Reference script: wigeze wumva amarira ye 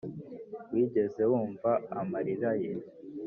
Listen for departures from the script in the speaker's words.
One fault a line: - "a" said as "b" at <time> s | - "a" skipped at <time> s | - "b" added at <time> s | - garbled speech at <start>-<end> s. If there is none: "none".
none